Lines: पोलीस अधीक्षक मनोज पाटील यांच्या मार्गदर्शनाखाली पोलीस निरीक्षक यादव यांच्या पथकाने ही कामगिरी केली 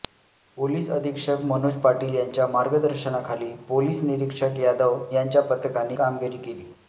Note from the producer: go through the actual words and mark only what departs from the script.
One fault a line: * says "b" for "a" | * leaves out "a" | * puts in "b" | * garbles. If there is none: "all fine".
* leaves out "ही"